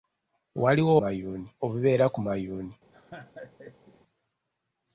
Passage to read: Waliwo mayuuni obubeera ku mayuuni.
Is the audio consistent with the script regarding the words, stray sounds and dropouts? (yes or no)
no